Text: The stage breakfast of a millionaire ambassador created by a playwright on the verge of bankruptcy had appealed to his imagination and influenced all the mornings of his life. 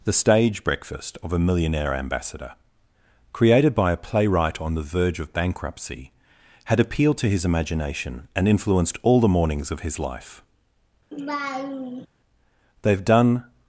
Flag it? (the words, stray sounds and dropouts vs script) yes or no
yes